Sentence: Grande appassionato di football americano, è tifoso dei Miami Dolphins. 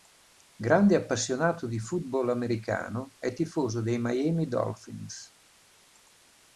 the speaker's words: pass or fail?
pass